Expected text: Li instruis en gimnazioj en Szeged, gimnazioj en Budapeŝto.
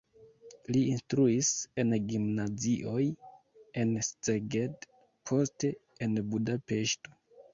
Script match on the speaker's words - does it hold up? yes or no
no